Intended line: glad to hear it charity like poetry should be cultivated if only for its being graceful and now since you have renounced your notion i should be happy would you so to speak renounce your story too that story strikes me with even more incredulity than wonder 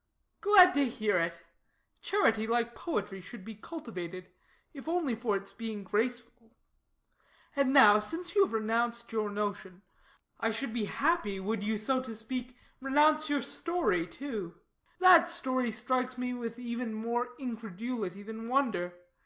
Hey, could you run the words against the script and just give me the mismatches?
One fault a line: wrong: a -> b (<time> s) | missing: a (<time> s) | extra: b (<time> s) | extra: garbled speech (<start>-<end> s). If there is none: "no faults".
no faults